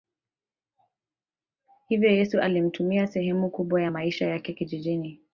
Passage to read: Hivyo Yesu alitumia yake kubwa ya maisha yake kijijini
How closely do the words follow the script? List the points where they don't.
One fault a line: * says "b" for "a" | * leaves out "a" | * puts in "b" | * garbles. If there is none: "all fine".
* says "sehemu" for "yake"